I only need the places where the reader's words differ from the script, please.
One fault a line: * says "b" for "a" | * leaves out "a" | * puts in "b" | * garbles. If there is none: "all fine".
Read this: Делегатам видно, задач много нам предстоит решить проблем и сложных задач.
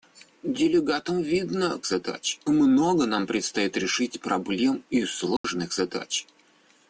all fine